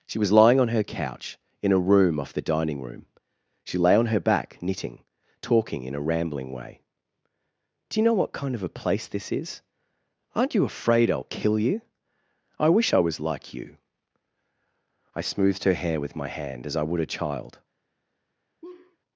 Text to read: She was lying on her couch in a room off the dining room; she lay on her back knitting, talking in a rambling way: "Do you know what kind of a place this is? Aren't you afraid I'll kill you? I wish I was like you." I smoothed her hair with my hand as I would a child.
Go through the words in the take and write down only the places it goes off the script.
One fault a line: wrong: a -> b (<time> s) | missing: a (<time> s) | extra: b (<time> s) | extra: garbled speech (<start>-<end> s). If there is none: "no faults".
no faults